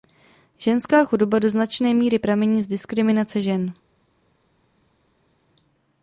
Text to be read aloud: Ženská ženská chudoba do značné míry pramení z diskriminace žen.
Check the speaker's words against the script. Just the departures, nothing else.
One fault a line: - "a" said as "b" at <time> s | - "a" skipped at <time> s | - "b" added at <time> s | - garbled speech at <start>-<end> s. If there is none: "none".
- "ženská" skipped at 1.1 s